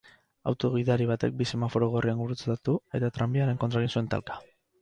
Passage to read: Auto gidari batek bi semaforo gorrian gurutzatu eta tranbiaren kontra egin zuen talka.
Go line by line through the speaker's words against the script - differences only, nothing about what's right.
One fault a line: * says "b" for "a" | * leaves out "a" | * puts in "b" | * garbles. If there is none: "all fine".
all fine